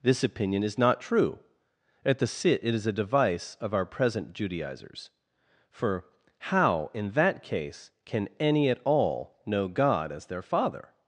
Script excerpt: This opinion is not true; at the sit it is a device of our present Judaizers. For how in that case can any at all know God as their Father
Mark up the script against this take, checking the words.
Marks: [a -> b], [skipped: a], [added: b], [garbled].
This opinion is not true; at the sit it is a device of our present Judaizers. For how in that case can any at all know God as their Father